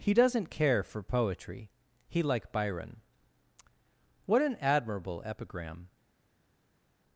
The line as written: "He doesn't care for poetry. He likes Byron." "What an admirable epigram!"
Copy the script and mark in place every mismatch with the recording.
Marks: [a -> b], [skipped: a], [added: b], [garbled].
"He doesn't care for poetry. He [likes -> like] Byron." "What an admirable epigram!"